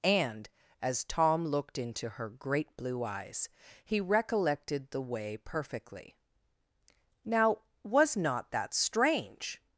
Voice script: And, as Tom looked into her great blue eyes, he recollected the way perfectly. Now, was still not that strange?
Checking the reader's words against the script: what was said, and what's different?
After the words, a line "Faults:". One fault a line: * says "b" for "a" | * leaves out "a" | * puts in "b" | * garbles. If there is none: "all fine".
And, as Tom looked into her great blue eyes, he recollected the way perfectly. Now, was not that strange?
Faults:
* leaves out "still"